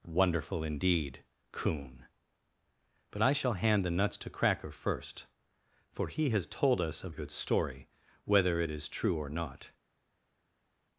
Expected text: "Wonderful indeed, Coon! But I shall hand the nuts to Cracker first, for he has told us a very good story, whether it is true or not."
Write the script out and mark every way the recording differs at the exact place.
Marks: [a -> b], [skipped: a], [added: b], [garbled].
"Wonderful indeed, Coon! But I shall hand the nuts to Cracker first, for he has told us a [skipped: very] good story, whether it is true or not."